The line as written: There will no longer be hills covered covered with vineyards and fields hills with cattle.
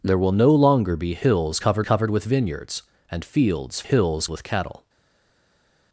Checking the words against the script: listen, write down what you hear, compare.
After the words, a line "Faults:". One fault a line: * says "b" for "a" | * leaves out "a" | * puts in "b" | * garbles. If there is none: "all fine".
There will no longer be hills covered covered with vineyards and fields hills with cattle.
Faults:
all fine